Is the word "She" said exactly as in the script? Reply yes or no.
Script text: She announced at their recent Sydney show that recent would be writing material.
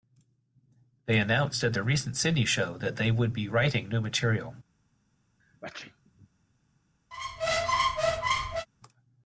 no